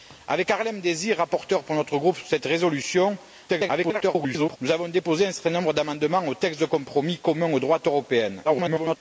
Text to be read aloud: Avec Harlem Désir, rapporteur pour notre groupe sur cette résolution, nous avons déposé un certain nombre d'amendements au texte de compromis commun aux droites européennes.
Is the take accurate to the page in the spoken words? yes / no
no